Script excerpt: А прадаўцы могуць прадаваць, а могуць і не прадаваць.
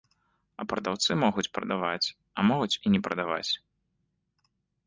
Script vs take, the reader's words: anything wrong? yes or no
no